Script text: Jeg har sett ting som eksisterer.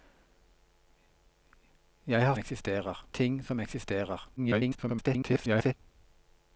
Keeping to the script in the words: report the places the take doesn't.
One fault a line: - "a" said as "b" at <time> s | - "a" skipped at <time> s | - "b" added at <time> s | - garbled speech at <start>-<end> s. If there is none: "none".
- "sett" said as "eksisterer" at 2.4 s
- garbled speech at 4.4-5.7 s